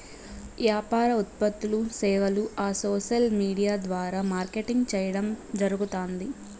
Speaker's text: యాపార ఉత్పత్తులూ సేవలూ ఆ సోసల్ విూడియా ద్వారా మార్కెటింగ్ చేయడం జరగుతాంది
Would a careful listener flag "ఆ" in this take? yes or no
no